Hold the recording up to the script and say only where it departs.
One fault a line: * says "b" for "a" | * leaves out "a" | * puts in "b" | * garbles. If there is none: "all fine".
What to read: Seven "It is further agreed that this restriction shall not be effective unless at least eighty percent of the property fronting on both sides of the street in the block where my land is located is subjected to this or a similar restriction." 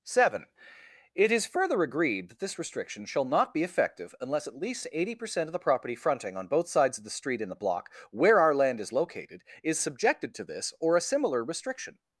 * says "our" for "my"